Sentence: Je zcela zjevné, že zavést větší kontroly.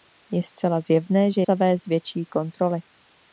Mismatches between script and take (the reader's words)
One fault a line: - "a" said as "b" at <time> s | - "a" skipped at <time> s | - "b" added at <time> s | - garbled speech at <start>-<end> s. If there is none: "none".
none